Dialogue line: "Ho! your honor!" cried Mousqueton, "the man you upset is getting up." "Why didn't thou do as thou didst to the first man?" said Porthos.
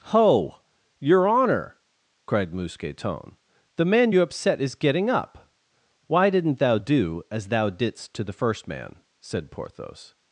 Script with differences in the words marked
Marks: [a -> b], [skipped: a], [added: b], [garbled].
"Ho! your honor!" cried Mousqueton, "the man you upset is getting up." "Why didn't thou do as thou didst to the first man?" said Porthos.